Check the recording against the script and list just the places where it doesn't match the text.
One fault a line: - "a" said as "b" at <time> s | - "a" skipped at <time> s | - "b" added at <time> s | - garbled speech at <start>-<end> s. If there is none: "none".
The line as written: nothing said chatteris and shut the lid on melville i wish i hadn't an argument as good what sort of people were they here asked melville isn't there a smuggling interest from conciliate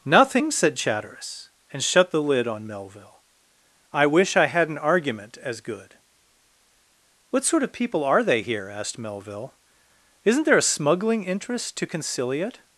- "hadn't" said as "had" at 4.5 s
- "were" said as "are" at 8.0 s
- "from" said as "to" at 11.8 s